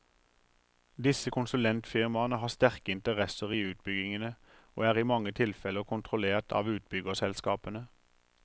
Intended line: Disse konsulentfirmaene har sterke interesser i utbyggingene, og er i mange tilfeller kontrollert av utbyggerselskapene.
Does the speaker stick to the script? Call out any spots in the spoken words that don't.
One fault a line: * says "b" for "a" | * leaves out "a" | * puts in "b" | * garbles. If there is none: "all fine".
all fine